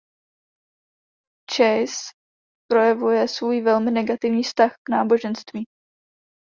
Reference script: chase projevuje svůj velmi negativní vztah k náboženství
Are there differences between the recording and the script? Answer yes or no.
no